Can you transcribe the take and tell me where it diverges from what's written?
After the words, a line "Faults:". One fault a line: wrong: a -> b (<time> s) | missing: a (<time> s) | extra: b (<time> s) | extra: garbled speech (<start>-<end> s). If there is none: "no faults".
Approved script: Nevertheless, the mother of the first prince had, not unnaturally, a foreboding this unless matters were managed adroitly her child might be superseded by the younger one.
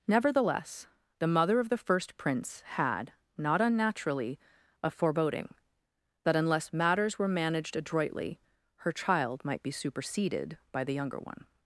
Nevertheless, the mother of the first prince had, not unnaturally, a foreboding that unless matters were managed adroitly her child might be superseded by the younger one.
Faults:
wrong: this -> that (6.2 s)